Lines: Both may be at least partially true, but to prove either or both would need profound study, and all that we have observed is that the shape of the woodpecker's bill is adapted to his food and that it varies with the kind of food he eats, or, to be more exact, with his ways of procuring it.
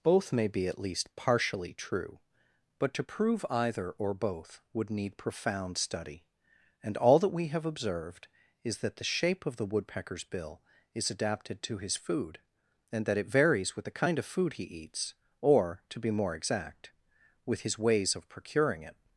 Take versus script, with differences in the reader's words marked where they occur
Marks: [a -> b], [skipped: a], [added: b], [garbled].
Both may be at least partially true, but to prove either or both would need profound study, and all that we have observed is that the shape of the woodpecker's bill is adapted to his food and that it varies with the kind of food he eats, or, to be more exact, with his ways of procuring it.